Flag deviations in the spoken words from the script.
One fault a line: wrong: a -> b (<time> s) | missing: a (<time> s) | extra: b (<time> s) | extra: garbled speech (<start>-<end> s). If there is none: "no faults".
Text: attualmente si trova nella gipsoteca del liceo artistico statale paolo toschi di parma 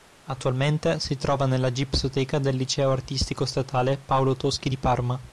no faults